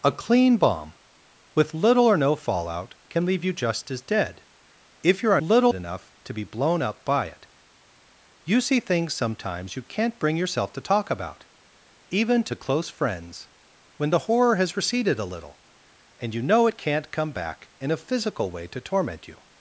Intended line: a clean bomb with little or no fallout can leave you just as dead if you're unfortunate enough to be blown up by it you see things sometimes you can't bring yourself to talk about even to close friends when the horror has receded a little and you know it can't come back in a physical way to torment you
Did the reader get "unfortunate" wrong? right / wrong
wrong